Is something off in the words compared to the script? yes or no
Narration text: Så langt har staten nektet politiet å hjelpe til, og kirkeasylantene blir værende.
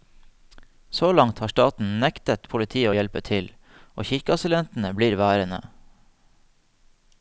no